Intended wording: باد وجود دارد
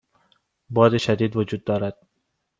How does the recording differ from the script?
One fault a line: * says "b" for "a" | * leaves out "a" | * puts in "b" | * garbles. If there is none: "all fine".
* puts in "شدید"